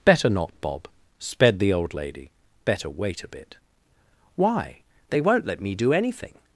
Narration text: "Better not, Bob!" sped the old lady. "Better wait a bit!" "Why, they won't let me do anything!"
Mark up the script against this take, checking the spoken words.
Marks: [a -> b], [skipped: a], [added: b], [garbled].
"Better not, Bob!" sped the old lady. "Better wait a bit!" "Why, they won't let me do anything!"